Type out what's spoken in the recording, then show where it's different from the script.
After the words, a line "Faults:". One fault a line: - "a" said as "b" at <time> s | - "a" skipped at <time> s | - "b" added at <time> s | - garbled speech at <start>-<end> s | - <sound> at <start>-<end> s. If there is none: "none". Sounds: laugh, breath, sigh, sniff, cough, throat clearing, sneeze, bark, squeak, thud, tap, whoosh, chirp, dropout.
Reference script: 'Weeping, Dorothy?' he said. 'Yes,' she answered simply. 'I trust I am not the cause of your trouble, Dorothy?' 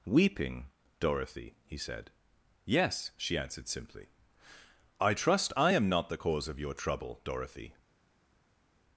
'Weeping, Dorothy?' he said. 'Yes,' she answered simply. 'I trust I am not the cause of your trouble, Dorothy?'
Faults:
none